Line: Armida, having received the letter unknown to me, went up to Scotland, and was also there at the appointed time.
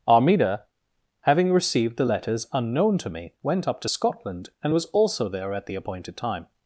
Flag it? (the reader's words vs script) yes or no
yes